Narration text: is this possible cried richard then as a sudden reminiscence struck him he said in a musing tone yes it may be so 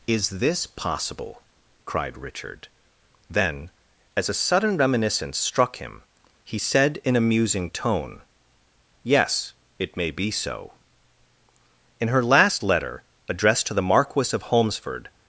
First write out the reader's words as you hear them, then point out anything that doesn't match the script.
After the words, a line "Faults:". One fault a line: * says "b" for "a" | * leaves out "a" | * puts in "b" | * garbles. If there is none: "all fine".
is this possible cried richard then as a sudden reminiscence struck him he said in a musing tone yes it may be so in her last letter addressed to the marquis of holmesford
Faults:
* puts in "in her last letter addressed to the marquis of holmesford"